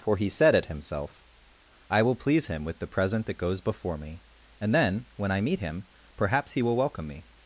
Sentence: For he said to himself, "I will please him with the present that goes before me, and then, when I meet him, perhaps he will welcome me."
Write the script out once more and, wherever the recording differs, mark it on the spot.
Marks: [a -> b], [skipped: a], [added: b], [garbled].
For he said [to -> at] himself, "I will please him with the present that goes before me, and then, when I meet him, perhaps he will welcome me."